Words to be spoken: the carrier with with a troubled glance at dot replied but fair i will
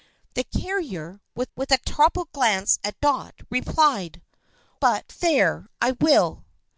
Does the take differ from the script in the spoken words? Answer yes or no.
no